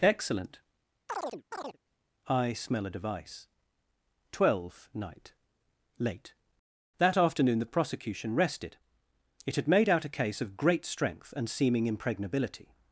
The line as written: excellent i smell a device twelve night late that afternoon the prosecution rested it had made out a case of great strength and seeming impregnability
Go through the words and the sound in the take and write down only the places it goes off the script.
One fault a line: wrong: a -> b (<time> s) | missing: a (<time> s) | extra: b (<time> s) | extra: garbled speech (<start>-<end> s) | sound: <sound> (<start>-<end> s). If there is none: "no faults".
sound: chirp (1.1-1.8 s)